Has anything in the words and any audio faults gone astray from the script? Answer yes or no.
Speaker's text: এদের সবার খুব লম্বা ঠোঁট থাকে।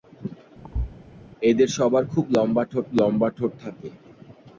yes